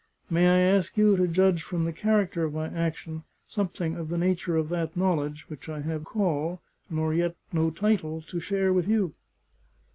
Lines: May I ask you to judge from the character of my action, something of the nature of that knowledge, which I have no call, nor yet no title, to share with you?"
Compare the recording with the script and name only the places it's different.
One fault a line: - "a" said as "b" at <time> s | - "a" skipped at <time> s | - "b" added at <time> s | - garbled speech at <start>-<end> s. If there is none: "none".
- "no" skipped at 6.1 s